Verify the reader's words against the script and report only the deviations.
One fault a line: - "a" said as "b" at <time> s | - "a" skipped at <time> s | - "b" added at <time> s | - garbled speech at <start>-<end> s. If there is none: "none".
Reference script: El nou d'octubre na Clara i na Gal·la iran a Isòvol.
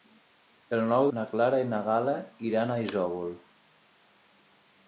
- "d'octubre" skipped at 1.1 s